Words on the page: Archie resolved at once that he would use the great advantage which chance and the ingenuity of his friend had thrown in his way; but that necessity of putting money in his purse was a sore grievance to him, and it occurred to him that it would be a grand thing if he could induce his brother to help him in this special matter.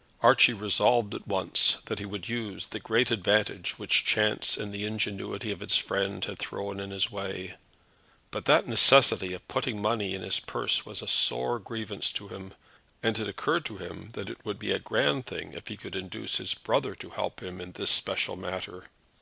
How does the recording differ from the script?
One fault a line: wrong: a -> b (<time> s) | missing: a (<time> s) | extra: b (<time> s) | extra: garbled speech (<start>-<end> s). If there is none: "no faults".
no faults